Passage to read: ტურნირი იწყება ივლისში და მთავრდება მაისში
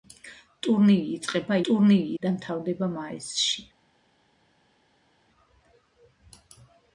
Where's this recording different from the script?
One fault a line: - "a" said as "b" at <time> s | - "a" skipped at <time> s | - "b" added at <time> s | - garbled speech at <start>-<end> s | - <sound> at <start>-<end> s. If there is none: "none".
- "ივლისში" said as "ტურნირი" at 1.7 s